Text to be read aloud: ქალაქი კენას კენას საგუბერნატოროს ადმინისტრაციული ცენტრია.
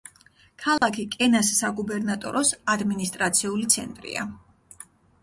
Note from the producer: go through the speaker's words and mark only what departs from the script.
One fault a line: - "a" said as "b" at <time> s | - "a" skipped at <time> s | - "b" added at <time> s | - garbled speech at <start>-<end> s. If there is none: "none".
- "კენას" skipped at 1.5 s